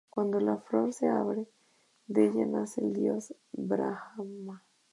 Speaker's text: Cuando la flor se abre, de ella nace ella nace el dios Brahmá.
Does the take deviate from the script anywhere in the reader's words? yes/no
yes